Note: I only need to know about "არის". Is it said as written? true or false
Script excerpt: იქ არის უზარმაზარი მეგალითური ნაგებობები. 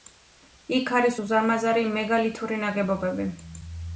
true